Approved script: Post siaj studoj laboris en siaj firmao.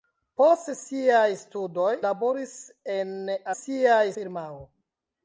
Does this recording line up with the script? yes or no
yes